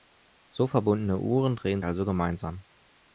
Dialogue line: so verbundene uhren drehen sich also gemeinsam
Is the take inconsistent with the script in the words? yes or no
yes